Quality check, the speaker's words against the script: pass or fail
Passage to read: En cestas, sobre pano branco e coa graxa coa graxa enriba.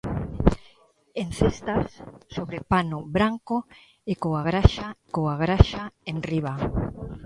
pass